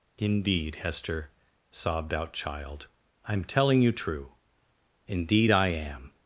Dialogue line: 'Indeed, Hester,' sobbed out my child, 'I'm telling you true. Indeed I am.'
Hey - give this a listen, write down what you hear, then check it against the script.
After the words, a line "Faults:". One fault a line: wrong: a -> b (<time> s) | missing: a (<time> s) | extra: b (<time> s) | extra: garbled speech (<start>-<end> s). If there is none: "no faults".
'Indeed, Hester,' sobbed out child, 'I'm telling you true. Indeed I am.'
Faults:
missing: my (2.3 s)